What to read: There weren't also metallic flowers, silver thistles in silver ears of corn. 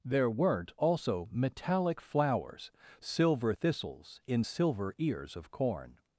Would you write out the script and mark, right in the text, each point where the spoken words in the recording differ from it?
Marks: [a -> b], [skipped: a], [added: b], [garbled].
There weren't also metallic flowers, silver thistles in silver ears of corn.